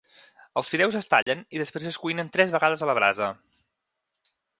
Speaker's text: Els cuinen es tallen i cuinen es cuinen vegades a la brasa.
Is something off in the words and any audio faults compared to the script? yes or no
yes